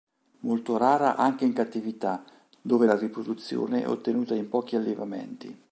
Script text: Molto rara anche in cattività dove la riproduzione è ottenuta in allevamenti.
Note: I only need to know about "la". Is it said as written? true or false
true